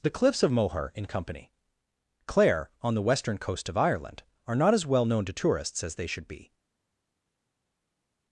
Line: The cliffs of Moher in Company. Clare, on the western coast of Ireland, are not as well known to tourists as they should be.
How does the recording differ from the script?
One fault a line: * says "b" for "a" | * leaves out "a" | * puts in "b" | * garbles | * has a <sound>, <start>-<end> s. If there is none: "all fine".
all fine